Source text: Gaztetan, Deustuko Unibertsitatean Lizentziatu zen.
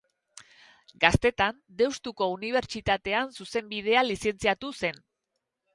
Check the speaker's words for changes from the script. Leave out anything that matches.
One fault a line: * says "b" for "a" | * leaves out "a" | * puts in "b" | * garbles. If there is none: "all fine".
* puts in "Zuzenbidean"